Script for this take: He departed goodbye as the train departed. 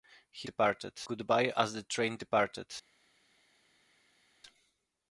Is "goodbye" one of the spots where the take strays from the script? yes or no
no